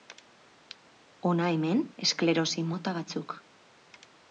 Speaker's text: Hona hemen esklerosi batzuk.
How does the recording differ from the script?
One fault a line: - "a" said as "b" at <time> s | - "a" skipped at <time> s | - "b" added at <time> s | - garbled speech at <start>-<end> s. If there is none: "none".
- "mota" added at 2.7 s